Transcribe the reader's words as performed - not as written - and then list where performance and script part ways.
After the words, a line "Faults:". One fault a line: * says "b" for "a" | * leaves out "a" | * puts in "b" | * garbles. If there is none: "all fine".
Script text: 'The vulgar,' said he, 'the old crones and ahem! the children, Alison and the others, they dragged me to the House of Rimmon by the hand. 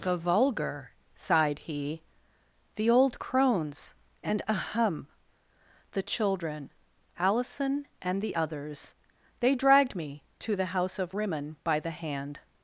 'The vulgar,' sighed he, 'the old crones and ahem! the children, Alison and the others, they dragged me to the House of Rimmon by the hand.
Faults:
* says "sighed" for "said"